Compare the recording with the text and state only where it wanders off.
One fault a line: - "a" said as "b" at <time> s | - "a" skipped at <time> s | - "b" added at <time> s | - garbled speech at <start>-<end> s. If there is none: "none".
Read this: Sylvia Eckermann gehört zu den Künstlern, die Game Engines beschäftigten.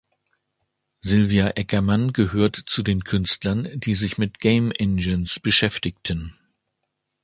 - "sich mit" added at 3.9 s